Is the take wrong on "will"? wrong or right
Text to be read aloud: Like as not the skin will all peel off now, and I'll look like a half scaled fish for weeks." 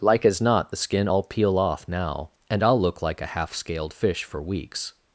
wrong